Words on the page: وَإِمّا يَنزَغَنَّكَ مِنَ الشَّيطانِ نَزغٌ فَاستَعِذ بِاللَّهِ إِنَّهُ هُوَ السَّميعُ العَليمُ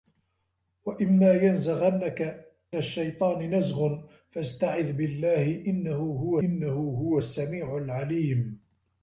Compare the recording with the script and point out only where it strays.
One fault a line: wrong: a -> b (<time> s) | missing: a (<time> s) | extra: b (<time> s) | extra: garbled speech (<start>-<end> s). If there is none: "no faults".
missing: مِنَ (2.5 s)
extra: إِنَّهُ هُوَ (6.4 s)